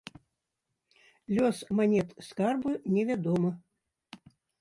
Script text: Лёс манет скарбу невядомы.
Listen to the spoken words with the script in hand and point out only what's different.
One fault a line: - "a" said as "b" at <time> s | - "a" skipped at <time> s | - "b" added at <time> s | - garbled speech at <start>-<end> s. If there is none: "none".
none